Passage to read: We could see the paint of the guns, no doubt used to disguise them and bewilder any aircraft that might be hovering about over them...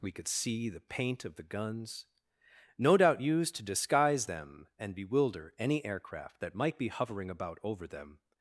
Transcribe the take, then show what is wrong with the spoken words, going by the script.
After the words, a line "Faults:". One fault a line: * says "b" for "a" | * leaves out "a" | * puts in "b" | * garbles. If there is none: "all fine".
We could see the paint of the guns, no doubt used to disguise them and bewilder any aircraft that might be hovering about over them...
Faults:
all fine